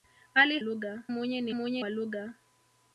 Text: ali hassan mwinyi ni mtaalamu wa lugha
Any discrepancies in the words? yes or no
yes